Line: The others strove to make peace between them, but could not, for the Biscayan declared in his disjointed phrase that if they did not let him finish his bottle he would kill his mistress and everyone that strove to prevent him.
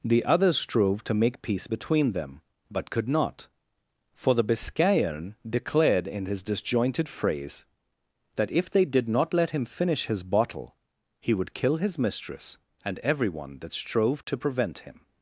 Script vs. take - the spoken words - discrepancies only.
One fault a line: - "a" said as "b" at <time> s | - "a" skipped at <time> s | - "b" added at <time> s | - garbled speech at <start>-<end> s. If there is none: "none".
none